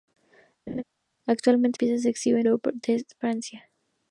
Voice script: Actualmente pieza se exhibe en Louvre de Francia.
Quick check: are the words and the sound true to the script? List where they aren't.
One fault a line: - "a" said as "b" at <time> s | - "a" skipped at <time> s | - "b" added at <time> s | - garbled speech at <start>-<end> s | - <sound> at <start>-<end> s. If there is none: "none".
- laugh at 0.7-0.8 s